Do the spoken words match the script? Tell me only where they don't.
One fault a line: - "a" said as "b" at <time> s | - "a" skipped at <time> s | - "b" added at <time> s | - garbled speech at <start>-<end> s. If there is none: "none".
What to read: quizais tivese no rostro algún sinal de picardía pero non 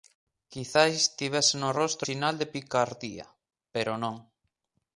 - "algún" skipped at 2.1 s